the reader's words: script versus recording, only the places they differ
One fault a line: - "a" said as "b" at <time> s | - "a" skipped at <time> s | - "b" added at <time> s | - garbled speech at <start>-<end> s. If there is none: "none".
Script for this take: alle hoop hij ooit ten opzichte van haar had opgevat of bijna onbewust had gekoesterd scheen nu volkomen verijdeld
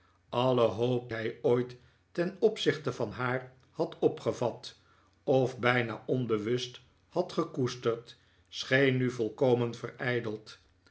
none